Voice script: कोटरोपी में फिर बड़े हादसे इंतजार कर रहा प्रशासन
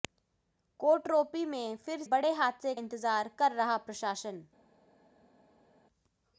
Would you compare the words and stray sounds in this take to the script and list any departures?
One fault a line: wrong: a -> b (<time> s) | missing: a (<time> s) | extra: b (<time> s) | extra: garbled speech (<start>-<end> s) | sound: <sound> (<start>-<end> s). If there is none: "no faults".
no faults